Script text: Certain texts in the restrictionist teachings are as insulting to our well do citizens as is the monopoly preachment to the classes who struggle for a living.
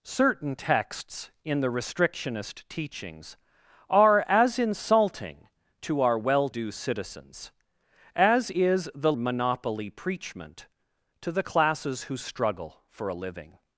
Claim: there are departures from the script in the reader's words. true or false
false